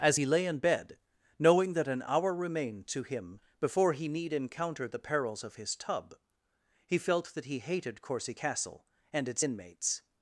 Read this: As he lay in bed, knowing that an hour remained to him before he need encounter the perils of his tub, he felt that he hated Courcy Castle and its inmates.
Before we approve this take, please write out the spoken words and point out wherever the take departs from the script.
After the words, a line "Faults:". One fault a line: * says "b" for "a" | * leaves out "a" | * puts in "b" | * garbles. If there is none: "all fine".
As he lay in bed, knowing that an hour remained to him before he need encounter the perils of his tub, he felt that he hated Courcy Castle and its inmates.
Faults:
all fine